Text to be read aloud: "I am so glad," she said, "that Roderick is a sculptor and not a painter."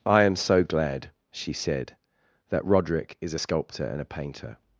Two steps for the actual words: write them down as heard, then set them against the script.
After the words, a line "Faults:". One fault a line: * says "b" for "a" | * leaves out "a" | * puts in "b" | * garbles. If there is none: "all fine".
"I am so glad," she said, "that Roderick is a sculptor and a painter."
Faults:
* leaves out "not"